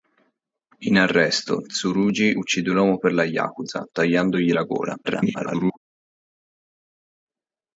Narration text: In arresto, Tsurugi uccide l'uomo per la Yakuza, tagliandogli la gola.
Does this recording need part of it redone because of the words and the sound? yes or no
yes